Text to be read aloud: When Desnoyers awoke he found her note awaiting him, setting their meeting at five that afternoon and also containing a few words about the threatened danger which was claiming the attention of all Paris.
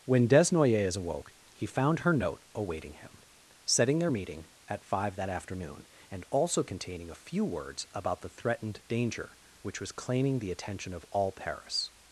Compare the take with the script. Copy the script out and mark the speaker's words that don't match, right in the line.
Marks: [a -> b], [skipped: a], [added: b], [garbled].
When Desnoyers awoke he found her note awaiting him, setting their meeting at five that afternoon and also containing a few words about the threatened danger which was claiming the attention of all Paris.